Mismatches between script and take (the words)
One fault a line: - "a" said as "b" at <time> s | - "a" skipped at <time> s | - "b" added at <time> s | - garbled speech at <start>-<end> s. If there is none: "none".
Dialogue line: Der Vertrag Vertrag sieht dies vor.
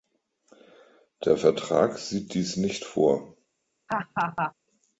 - "Vertrag" skipped at 2.0 s
- "nicht" added at 2.6 s